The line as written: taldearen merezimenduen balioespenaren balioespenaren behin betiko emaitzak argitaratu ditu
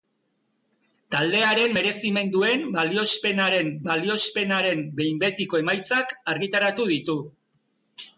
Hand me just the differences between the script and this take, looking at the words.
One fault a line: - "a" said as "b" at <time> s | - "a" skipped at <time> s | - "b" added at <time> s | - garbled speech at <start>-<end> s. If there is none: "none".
none